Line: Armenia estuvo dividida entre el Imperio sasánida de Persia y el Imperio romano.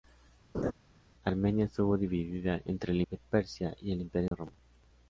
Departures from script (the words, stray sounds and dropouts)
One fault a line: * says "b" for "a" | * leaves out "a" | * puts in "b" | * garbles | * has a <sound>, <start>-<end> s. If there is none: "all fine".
* has a laugh, 0.5-0.7 s
* leaves out "Imperio sasánida"
* has a dropout, 4.3-4.3 s